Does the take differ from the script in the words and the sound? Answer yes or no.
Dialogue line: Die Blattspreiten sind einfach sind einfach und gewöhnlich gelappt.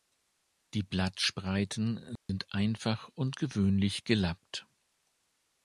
yes